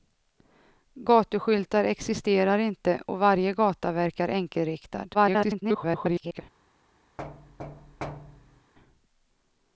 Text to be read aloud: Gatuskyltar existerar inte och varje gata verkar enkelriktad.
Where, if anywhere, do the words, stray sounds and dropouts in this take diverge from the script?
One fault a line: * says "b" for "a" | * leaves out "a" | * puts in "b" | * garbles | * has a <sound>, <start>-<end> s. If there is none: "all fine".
* garbles
* has a thud, 7.2-8.7 s